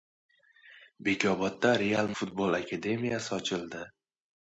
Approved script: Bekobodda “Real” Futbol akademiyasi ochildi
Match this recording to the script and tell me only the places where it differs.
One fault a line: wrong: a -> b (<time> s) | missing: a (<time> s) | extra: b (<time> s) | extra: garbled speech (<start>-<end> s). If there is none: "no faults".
no faults